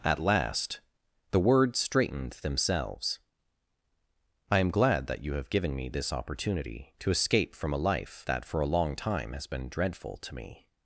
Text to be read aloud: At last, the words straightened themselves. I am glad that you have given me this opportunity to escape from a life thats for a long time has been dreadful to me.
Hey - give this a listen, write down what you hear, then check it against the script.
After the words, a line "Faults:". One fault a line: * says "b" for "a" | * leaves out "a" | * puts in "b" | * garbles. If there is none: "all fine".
At last, the words straightened themselves. I am glad that you have given me this opportunity to escape from a life that for a long time has been dreadful to me.
Faults:
* says "that" for "thats"